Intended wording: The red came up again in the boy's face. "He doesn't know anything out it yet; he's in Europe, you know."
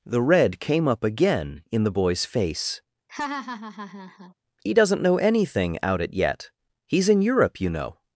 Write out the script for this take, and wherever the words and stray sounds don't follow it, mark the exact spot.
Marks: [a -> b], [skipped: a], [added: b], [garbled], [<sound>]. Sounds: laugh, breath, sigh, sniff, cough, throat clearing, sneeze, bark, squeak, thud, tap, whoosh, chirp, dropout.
The red came up again in the boy's face. [laugh] "He doesn't know anything out it yet; he's in Europe, you know."